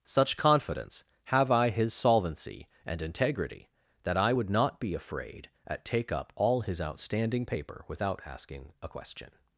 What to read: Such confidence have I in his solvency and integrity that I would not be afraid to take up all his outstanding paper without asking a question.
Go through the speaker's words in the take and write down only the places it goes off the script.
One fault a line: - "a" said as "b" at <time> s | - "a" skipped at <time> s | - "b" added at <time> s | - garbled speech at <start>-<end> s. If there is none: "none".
- "in" skipped at 1.7 s
- "to" said as "at" at 5.7 s